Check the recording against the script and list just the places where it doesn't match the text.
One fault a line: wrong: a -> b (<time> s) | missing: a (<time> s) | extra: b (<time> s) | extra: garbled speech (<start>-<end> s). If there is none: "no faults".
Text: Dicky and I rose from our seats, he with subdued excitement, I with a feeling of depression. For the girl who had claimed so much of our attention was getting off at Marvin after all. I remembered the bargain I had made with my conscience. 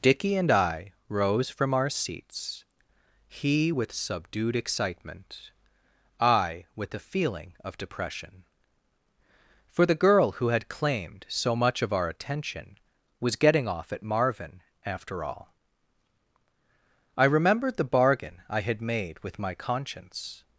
no faults